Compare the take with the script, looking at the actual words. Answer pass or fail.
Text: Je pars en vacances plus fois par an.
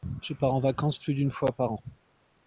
fail